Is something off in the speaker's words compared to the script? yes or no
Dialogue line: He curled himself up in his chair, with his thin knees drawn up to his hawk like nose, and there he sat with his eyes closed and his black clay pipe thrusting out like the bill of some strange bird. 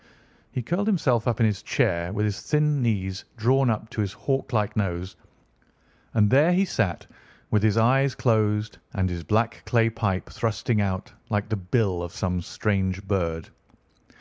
no